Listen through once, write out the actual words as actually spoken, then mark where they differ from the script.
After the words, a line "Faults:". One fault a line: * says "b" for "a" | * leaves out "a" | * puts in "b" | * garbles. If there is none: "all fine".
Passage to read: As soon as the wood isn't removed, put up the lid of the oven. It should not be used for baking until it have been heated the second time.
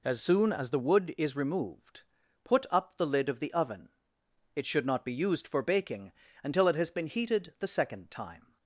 As soon as the wood is removed, put up the lid of the oven. It should not be used for baking until it has been heated the second time.
Faults:
* says "is" for "isn't"
* says "has" for "have"